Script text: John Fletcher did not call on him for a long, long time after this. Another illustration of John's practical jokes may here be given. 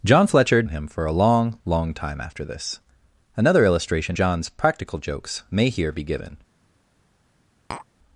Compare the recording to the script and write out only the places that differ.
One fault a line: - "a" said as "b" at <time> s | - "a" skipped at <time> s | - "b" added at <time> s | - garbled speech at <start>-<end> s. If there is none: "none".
- "did not call" skipped at 0.6 s
- "of" skipped at 4.2 s